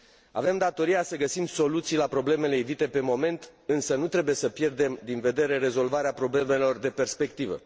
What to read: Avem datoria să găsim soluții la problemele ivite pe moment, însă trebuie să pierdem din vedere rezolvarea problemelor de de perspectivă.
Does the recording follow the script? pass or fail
fail